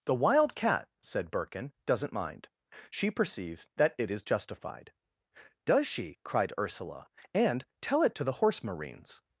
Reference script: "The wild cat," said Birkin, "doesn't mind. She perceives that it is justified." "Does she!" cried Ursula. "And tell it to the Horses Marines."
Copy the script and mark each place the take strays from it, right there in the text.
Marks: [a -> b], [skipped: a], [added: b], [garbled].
"The wild cat," said Birkin, "doesn't mind. She perceives that it is justified." "Does she!" cried Ursula. "And tell it to the [Horses -> Horse] Marines."